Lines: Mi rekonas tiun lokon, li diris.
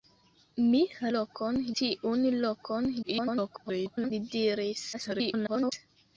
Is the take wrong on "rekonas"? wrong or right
wrong